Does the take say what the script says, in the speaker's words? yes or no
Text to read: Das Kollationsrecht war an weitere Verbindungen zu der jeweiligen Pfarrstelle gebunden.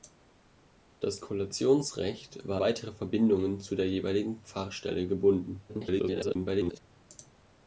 no